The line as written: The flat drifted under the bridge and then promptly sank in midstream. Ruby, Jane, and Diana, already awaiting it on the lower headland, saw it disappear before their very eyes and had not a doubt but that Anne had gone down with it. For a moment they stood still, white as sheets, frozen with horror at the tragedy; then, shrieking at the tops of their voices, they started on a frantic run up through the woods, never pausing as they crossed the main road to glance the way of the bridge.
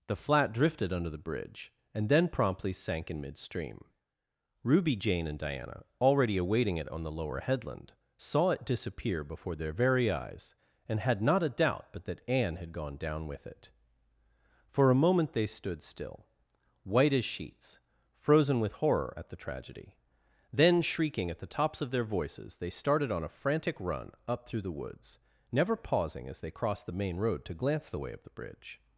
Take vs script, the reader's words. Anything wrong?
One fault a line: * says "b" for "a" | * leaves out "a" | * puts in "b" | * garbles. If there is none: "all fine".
all fine